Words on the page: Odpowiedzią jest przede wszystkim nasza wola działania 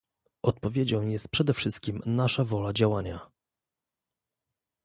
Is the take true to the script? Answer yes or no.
yes